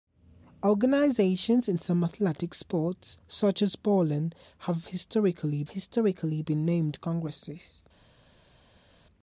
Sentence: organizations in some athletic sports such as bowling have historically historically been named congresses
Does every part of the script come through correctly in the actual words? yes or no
yes